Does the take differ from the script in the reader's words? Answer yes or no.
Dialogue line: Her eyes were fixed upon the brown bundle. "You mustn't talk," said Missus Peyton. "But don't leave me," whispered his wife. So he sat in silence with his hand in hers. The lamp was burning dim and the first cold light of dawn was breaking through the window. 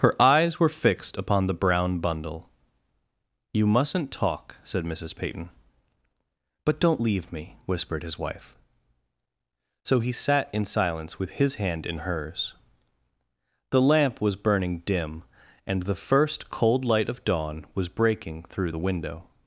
no